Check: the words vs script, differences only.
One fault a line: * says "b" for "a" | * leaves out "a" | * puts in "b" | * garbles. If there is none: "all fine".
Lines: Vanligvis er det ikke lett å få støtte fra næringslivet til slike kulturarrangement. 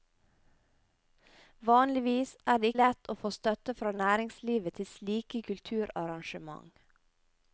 * leaves out "ikke"